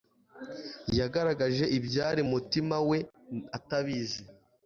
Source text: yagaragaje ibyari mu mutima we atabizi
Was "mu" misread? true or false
true